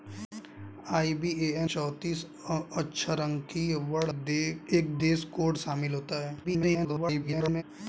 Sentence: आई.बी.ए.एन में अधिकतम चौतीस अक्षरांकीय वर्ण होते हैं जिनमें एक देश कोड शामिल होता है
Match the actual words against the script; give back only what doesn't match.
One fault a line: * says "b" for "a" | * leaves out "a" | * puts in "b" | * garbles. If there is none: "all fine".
* leaves out "में अधिकतम"
* leaves out "होते हैं जिनमें"
* garbles